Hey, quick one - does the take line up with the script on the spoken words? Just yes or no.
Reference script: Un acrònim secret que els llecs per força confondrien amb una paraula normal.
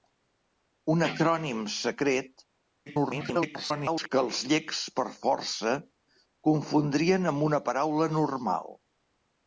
no